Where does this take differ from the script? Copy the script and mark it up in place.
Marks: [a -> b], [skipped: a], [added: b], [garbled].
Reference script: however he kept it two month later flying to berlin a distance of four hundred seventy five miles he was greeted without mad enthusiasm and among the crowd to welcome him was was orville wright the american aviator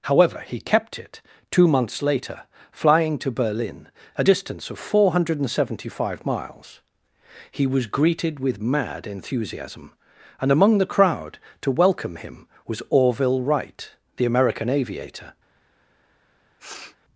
however he kept it two [month -> months] later flying to berlin a distance of four hundred seventy five miles he was greeted [without -> with] mad enthusiasm and among the crowd to welcome him was [skipped: was] orville wright the american aviator